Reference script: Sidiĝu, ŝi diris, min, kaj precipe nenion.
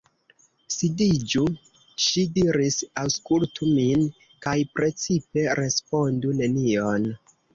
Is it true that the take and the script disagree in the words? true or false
true